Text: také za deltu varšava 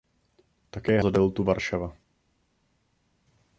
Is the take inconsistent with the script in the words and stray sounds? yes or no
no